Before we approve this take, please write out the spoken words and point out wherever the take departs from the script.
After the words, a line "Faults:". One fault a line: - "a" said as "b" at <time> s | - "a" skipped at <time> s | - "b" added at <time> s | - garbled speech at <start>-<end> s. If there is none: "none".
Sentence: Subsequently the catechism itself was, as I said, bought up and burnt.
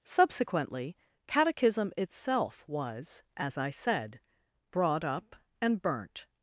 Subsequently catechism itself was, as I said, brought up and burnt.
Faults:
- "the" skipped at 1.0 s
- "bought" said as "brought" at 4.7 s